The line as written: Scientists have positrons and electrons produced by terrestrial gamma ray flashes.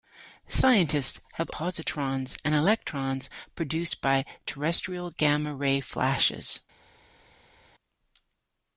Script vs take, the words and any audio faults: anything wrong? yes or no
no